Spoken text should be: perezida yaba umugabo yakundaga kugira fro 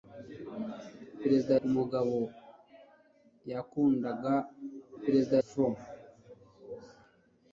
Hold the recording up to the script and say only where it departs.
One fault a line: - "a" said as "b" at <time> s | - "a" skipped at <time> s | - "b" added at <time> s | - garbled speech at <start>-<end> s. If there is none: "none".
- "yaba" skipped at 1.6 s
- "kugira" said as "perezida" at 5.0 s